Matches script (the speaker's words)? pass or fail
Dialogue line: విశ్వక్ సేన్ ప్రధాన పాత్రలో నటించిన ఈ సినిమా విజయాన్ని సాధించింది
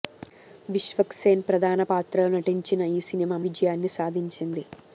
pass